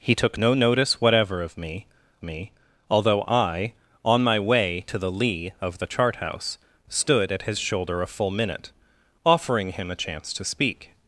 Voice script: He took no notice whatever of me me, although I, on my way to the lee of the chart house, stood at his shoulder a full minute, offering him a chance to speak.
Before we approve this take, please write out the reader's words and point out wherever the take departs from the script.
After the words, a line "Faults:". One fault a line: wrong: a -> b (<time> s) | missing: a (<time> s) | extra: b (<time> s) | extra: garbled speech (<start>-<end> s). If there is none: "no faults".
He took no notice whatever of me me, although I, on my way to the lee of the chart house, stood at his shoulder a full minute, offering him a chance to speak.
Faults:
no faults